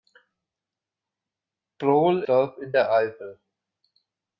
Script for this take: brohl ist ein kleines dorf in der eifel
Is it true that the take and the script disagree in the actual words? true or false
true